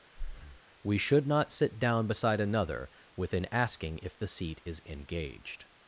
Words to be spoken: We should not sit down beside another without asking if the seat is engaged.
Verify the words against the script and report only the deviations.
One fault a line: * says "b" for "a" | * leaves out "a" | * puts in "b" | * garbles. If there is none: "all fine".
* says "within" for "without"